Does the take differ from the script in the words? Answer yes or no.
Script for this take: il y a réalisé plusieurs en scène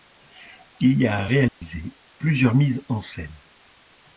yes